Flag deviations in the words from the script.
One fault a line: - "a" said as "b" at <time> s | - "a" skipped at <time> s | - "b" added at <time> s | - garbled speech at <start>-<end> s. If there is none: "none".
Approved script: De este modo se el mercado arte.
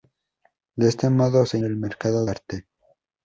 none